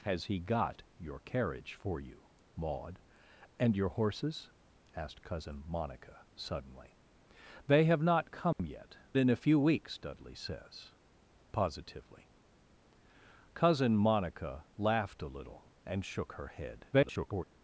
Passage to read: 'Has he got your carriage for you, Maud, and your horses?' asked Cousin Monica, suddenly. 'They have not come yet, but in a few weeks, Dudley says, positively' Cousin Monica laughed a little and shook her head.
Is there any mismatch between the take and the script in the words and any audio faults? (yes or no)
yes